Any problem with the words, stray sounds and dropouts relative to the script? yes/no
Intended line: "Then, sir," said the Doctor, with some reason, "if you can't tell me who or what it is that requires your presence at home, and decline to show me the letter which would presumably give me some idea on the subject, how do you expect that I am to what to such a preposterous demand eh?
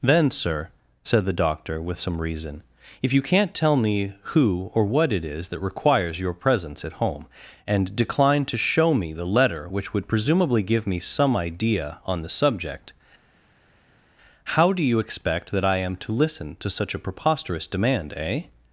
yes